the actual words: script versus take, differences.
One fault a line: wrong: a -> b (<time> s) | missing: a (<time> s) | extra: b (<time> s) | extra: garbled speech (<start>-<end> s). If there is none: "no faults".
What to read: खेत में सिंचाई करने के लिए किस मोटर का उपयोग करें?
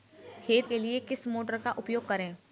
missing: में सिंचाई करने (0.7 s)